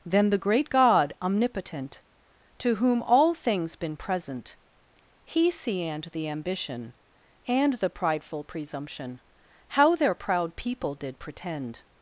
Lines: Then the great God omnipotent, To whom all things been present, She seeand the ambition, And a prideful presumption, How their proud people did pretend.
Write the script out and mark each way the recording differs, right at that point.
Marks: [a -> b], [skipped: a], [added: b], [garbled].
Then the great God omnipotent, To whom all things been present, [She -> He] seeand the ambition, And [a -> the] prideful presumption, How their proud people did pretend.